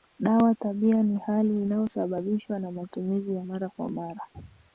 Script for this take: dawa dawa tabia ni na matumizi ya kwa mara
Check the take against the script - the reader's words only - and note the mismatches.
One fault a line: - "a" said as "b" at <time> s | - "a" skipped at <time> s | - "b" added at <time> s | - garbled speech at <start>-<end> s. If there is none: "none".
- "dawa" skipped at 0.6 s
- "hali inayosababishwa" added at 1.2 s
- "mara" added at 3.4 s